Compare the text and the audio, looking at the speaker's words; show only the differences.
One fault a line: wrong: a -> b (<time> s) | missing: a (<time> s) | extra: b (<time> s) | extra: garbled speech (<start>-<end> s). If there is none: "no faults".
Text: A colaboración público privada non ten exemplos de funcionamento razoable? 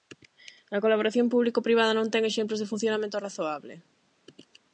no faults